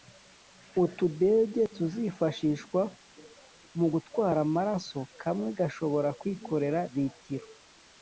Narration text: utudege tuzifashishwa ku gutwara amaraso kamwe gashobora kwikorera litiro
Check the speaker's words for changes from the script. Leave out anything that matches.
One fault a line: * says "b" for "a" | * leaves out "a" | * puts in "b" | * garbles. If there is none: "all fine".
* says "mu" for "ku"